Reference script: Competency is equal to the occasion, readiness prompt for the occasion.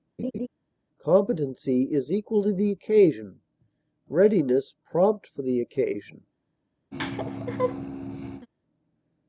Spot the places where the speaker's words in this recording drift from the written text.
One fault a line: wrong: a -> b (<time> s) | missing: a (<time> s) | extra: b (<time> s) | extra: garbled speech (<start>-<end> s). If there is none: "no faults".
no faults